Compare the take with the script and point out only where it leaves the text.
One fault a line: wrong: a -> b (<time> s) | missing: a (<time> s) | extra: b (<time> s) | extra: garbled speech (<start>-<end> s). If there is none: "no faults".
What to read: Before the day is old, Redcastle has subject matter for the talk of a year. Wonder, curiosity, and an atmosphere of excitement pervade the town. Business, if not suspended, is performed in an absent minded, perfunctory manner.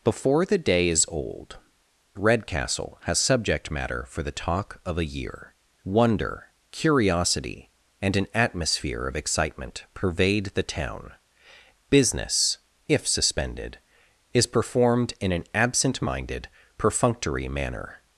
missing: not (13.1 s)